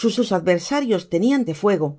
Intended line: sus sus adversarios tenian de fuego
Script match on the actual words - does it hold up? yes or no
yes